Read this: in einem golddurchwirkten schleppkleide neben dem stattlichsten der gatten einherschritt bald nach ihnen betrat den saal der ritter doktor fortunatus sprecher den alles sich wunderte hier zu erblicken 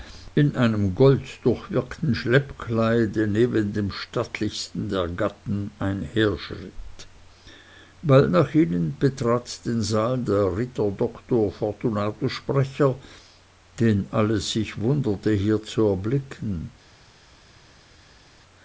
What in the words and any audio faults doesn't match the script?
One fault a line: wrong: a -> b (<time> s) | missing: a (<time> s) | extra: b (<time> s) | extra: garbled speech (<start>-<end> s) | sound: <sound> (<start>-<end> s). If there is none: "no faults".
no faults